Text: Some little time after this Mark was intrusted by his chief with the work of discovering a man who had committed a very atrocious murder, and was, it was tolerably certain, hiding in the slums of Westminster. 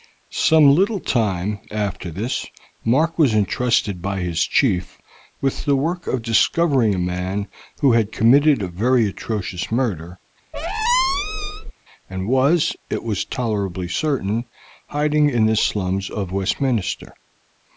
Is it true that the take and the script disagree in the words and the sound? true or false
true